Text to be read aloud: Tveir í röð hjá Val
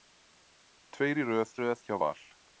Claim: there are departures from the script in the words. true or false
true